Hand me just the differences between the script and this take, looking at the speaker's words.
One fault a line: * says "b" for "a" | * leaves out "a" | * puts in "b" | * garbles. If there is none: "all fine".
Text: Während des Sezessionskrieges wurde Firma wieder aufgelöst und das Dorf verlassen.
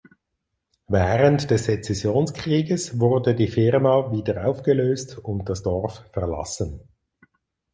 * puts in "die"